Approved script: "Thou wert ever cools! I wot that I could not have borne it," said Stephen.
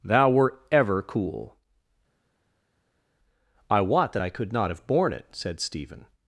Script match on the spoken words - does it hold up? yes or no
no